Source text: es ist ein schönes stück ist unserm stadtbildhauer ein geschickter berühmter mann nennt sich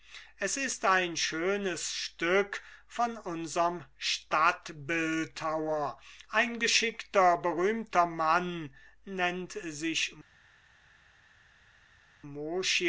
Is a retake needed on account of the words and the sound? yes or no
yes